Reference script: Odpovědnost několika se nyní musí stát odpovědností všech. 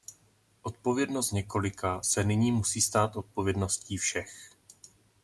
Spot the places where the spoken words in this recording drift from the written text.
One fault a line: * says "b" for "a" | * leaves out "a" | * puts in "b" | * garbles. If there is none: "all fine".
all fine